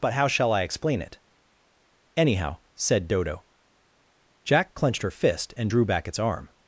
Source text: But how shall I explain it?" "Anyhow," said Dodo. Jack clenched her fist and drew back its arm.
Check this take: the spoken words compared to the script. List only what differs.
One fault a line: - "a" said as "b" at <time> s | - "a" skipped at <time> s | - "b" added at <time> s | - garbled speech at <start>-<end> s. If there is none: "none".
none